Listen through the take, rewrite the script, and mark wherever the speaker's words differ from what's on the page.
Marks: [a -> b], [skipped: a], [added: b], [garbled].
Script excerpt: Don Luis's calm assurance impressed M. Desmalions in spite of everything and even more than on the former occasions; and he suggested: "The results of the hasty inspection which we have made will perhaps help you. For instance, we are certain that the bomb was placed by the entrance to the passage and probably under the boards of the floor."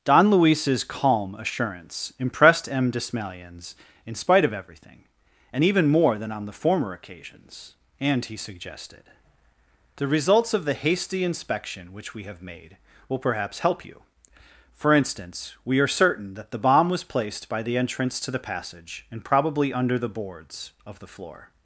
Don Luis's calm assurance impressed M. Desmalions in spite of everything and even more than on the former occasions; and he suggested: "The results of the hasty inspection which we have made will perhaps help you. For instance, we are certain that the bomb was placed by the entrance to the passage and probably under the boards of the floor."